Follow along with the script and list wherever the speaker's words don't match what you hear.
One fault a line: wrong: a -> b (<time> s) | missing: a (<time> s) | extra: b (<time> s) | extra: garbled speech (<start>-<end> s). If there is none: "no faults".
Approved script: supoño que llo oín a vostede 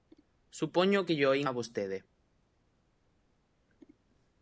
no faults